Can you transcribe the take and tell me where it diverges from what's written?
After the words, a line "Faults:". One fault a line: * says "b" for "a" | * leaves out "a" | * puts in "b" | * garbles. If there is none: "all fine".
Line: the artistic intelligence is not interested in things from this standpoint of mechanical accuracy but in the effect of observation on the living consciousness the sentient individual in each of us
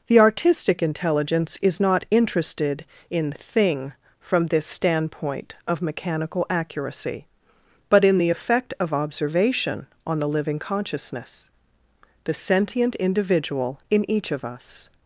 the artistic intelligence is not interested in thing from this standpoint of mechanical accuracy but in the effect of observation on the living consciousness the sentient individual in each of us
Faults:
* says "thing" for "things"